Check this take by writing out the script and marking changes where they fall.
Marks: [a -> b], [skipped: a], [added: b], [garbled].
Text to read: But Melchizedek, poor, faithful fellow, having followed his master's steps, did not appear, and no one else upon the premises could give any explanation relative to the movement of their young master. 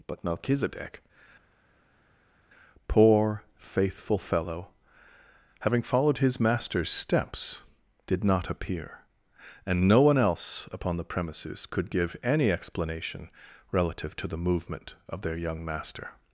But Melchizedek, poor, faithful fellow, having followed his master's steps, did not appear, and no one else upon the premises could give any explanation relative to the movement of their young master.